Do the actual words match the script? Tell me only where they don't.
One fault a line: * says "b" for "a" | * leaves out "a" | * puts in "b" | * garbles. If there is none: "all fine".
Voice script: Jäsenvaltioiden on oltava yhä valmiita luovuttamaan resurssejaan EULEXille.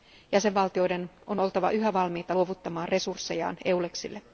all fine